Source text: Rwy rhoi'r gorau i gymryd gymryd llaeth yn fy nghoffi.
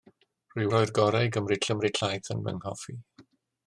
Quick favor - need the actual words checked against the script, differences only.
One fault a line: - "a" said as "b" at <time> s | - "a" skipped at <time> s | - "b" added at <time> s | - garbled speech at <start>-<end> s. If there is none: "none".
none